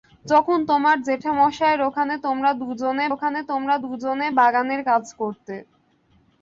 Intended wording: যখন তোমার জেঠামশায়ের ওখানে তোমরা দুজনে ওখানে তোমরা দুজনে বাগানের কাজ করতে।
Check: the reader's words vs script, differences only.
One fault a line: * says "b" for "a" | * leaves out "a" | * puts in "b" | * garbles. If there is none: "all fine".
all fine